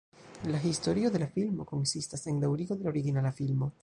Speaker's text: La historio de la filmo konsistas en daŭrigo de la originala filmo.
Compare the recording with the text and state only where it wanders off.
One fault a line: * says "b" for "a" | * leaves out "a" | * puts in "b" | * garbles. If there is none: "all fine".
all fine